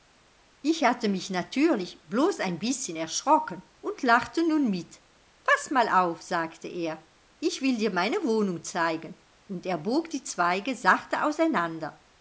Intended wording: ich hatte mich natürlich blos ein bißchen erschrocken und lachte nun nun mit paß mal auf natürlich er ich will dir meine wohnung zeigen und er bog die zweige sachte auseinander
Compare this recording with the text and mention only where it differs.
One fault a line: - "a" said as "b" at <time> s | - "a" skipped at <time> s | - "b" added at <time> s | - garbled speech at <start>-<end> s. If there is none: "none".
- "nun" skipped at 4.7 s
- "natürlich" said as "sagte" at 6.2 s